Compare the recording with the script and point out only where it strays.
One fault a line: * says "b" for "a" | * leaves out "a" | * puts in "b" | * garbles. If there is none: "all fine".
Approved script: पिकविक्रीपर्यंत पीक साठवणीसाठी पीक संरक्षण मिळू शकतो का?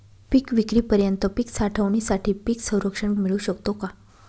all fine